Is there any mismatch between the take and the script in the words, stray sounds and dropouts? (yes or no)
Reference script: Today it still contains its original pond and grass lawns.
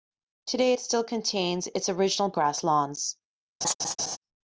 yes